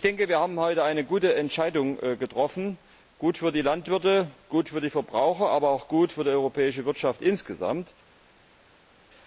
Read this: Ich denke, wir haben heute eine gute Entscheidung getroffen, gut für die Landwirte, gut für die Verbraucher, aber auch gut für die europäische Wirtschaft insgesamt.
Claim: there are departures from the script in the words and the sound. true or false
false